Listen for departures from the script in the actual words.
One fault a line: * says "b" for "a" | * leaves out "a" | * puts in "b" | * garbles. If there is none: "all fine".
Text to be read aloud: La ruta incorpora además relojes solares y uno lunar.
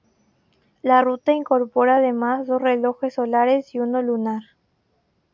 * puts in "dos"